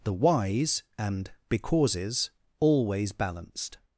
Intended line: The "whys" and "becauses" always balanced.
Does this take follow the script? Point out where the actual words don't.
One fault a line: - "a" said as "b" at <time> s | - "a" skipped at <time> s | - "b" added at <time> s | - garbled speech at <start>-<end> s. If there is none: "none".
none